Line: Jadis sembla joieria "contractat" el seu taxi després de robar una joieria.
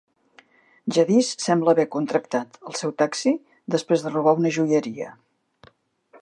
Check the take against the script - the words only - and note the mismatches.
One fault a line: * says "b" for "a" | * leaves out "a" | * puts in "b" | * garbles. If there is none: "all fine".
* says "haver" for "joieria"